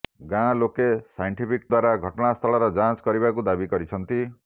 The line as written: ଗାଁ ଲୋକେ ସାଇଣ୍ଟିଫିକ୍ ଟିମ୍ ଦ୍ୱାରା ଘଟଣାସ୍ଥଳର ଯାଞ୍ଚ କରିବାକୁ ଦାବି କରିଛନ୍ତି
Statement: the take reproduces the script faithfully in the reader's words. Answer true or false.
false